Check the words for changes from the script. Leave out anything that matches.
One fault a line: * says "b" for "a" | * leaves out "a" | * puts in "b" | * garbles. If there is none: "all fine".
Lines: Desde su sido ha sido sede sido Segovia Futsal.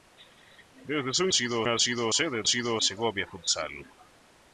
all fine